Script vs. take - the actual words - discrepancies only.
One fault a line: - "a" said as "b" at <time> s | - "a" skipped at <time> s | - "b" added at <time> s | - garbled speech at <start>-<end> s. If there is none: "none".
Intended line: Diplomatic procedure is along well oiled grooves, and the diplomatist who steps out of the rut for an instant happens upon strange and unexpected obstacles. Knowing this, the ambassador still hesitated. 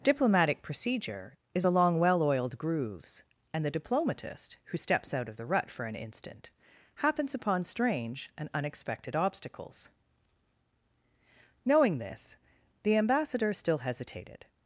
none